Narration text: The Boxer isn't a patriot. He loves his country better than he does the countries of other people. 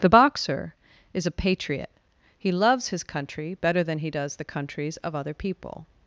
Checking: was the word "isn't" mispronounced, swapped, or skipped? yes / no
yes